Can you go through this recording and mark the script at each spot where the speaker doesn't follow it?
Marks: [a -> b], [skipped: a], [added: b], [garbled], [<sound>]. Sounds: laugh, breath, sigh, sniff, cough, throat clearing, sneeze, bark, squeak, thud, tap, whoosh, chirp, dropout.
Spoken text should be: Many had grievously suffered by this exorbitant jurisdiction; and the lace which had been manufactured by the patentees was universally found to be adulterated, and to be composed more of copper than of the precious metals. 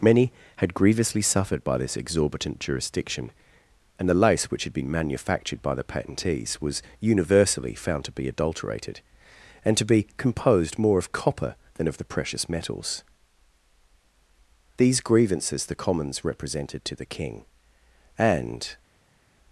Many had grievously suffered by this exorbitant jurisdiction; and the lace which had been manufactured by the patentees was universally found to be adulterated, and to be composed more of copper than of the precious metals. [added: These grievances the commons represented to the king and]